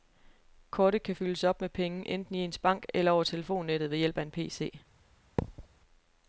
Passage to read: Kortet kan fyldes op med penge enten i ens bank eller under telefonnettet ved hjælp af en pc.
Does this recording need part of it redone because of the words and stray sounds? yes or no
yes